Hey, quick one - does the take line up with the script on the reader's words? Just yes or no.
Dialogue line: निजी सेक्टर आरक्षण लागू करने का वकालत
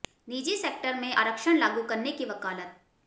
no